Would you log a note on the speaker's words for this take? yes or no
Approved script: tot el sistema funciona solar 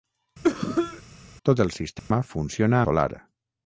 no